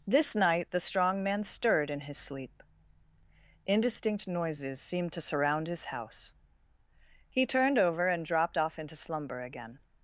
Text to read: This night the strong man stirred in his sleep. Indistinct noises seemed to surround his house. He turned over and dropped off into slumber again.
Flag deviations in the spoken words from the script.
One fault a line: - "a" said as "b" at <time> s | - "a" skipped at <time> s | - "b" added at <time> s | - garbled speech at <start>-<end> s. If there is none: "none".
none